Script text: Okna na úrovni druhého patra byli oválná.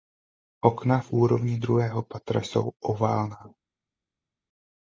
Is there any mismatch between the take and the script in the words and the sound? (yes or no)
yes